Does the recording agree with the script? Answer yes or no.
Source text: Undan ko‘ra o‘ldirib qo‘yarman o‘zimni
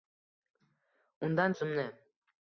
no